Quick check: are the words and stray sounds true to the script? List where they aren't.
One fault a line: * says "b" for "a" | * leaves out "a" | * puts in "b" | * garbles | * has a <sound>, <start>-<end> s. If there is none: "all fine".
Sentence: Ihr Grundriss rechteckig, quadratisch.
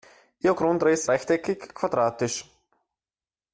all fine